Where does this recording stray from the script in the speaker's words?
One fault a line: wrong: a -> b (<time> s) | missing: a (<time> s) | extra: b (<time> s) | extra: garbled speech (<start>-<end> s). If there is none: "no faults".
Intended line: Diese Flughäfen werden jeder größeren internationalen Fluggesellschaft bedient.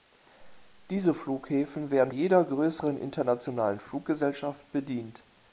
no faults